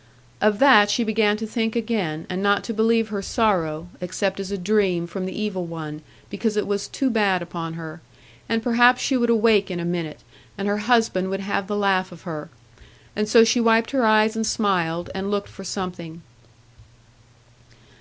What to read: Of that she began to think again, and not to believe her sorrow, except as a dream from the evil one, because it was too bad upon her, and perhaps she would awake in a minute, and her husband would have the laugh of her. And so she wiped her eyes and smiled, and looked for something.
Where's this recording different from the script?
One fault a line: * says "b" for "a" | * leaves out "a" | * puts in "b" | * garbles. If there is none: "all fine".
all fine